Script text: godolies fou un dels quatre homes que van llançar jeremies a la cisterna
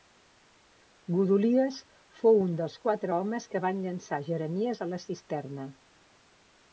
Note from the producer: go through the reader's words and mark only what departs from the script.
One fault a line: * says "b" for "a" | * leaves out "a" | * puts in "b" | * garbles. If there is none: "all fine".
all fine